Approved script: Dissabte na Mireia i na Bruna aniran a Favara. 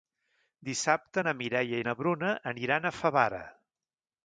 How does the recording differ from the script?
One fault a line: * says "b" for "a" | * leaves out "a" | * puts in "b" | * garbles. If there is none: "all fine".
all fine